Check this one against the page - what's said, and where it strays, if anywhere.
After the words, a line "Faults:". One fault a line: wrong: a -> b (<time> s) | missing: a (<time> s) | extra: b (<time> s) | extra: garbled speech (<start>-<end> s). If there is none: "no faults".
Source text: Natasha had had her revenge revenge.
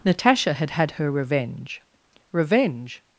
Natasha had had her revenge revenge.
Faults:
no faults